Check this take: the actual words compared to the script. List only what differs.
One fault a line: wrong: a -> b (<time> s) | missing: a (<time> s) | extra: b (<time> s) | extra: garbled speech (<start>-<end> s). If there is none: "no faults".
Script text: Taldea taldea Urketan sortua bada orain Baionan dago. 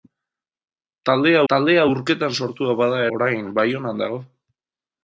no faults